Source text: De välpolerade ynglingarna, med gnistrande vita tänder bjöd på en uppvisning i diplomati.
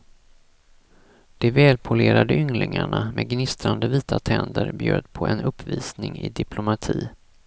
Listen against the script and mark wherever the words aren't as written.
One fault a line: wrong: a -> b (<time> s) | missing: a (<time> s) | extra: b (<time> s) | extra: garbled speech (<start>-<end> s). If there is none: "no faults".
no faults